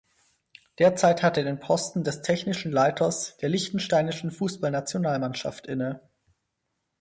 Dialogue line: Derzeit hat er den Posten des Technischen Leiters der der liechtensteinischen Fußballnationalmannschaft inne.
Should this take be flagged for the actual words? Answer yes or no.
yes